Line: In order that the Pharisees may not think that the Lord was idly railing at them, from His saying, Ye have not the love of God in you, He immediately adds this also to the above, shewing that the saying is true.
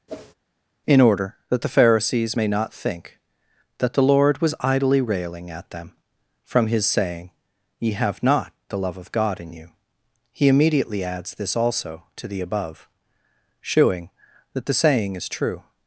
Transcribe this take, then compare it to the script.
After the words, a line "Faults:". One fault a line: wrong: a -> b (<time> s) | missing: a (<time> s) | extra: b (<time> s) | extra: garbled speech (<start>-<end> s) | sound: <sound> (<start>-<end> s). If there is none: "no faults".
In order that the Pharisees may not think that the Lord was idly railing at them, from His saying, Ye have not the love of God in you, He immediately adds this also to the above, shewing that the saying is true.
Faults:
sound: whoosh (0.1-0.3 s)